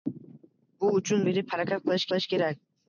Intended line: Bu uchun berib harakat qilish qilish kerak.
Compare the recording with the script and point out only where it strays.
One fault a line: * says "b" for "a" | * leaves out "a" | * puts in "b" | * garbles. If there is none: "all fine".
all fine